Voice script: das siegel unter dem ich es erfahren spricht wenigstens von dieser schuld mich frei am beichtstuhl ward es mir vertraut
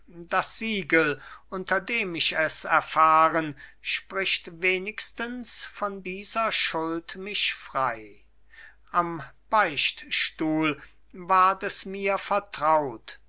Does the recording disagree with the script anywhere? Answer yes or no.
no